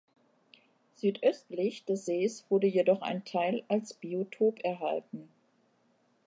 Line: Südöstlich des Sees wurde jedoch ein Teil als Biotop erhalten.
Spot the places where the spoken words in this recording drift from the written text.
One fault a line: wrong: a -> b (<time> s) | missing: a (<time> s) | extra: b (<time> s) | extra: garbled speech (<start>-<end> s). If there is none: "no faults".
no faults